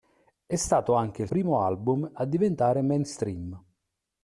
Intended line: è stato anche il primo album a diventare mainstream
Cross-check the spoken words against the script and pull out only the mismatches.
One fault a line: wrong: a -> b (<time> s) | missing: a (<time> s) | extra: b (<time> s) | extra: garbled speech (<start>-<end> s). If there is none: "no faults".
no faults